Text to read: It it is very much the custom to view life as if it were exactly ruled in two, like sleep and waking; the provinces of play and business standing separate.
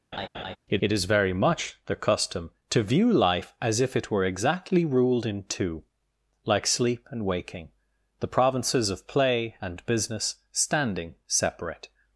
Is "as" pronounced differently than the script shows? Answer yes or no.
no